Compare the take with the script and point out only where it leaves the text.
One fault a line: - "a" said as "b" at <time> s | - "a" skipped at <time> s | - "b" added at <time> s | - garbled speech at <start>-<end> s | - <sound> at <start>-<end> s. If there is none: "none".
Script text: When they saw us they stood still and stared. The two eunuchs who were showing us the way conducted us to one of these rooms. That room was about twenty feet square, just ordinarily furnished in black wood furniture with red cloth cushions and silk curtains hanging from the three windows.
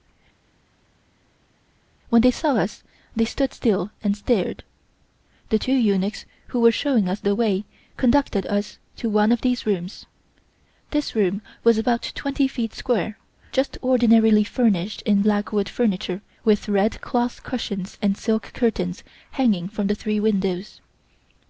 - "That" said as "This" at 10.9 s